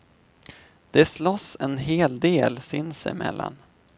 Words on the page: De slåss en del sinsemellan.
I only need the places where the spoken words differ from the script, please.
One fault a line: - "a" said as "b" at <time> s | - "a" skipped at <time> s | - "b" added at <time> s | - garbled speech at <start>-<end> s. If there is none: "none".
- "hel" added at 1.8 s